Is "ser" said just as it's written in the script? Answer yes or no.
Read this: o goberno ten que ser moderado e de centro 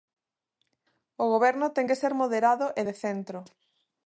yes